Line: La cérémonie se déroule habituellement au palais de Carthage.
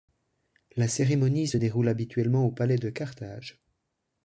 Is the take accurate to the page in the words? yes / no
yes